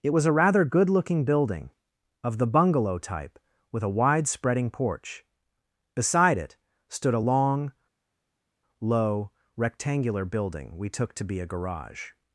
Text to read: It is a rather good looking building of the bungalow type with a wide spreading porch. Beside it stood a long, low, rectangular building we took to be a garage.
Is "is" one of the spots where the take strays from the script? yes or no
yes